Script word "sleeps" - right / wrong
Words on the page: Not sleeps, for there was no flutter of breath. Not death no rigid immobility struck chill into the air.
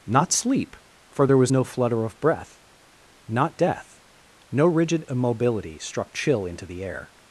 wrong